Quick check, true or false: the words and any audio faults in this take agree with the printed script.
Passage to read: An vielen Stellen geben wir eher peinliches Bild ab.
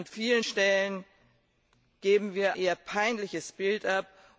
true